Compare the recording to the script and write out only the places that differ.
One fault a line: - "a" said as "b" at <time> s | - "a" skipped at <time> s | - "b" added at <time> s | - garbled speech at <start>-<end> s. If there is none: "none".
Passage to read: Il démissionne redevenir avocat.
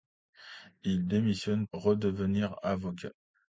none